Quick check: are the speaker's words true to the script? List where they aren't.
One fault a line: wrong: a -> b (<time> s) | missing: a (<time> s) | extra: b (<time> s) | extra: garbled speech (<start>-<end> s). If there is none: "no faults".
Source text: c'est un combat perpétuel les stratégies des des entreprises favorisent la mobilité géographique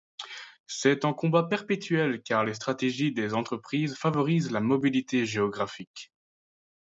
extra: car (2.2 s)
missing: des (3.3 s)